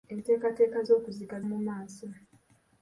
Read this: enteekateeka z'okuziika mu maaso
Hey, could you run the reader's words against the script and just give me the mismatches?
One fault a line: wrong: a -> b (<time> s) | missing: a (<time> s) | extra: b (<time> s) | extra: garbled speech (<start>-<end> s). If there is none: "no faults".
no faults